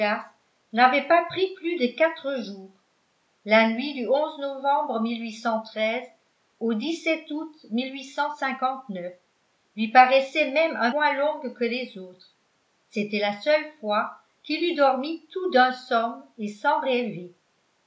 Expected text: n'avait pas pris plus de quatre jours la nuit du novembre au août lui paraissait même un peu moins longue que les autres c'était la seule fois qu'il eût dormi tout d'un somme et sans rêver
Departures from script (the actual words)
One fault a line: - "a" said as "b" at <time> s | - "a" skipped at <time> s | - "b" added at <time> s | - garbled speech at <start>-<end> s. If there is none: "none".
- "peu" skipped at 10.9 s